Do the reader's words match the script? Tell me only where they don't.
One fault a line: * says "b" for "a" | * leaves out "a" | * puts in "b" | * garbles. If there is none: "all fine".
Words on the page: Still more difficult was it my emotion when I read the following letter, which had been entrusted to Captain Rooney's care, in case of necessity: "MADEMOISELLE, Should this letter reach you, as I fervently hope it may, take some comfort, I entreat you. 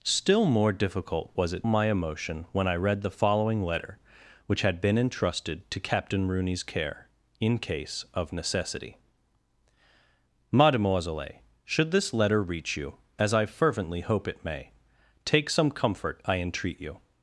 all fine